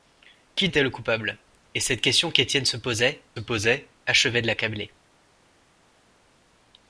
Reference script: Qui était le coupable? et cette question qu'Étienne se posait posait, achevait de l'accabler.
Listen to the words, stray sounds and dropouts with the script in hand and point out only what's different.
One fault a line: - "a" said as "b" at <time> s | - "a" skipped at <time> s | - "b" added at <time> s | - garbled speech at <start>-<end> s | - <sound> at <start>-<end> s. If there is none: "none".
none